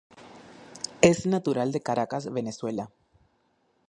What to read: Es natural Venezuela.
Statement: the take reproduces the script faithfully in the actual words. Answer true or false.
false